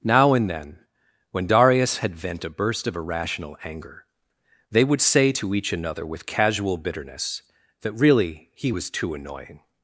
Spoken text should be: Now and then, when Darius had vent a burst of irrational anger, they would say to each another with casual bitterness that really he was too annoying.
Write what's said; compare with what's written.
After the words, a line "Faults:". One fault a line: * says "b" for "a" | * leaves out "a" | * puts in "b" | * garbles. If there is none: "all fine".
Now and then, when Darius had vent a burst of irrational anger, they would say to each another with casual bitterness that really he was too annoying.
Faults:
all fine